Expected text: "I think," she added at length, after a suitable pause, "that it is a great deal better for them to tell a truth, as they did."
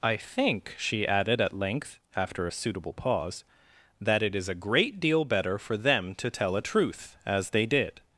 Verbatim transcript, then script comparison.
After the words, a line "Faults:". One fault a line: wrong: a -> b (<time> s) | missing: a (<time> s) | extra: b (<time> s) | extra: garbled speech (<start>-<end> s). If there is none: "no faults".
"I think," she added at length, after a suitable pause, "that it is a great deal better for them to tell a truth, as they did."
Faults:
no faults